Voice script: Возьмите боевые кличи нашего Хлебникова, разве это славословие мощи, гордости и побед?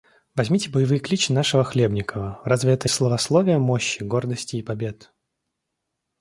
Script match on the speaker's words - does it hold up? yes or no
yes